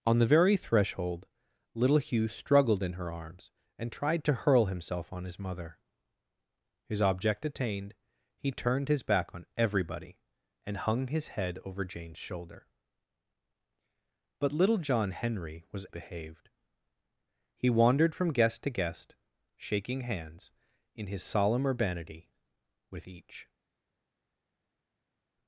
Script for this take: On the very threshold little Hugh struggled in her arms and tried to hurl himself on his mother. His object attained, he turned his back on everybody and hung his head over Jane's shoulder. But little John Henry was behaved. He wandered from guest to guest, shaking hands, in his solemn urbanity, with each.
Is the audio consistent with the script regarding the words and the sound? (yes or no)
yes